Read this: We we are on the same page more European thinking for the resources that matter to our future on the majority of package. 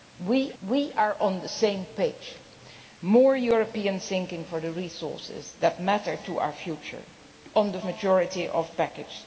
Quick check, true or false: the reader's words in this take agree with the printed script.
true